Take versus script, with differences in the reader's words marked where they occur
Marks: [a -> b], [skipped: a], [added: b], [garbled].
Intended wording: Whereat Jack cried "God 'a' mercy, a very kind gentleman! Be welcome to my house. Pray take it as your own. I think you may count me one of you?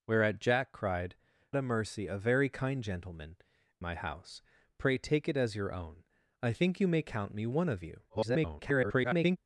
Whereat Jack cried [skipped: "God] 'a' mercy, a very kind gentleman! [skipped: Be welcome to] my house. Pray take it as your own. I think you may count me one of you? [garbled]